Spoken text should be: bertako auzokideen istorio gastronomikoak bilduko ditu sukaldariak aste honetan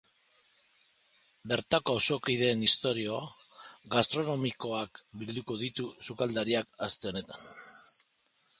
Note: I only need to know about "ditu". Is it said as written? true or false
true